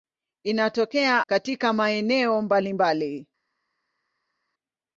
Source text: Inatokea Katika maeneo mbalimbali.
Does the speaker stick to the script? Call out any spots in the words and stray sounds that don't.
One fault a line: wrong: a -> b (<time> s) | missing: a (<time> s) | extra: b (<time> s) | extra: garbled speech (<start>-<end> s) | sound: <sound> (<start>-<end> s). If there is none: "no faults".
no faults